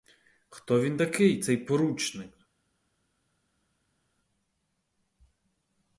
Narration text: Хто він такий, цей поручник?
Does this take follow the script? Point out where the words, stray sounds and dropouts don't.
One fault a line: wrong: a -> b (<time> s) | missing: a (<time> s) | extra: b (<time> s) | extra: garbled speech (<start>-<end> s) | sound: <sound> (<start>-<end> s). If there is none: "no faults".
no faults